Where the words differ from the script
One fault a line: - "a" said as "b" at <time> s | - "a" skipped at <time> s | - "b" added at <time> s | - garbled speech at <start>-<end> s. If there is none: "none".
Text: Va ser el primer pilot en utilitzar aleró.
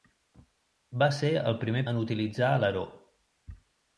- "pilot" skipped at 1.8 s